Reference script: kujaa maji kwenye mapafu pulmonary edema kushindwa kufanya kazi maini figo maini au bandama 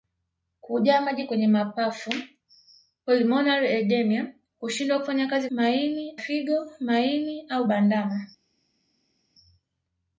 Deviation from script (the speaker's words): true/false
false